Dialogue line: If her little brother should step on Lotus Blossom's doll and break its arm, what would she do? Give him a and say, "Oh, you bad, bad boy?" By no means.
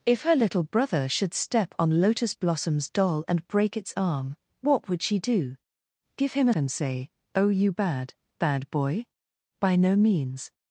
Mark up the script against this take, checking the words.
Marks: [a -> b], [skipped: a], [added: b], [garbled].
If her little brother should step on Lotus Blossom's doll and break its arm, what would she do? Give him a and say, "Oh, you bad, bad boy?" By no means.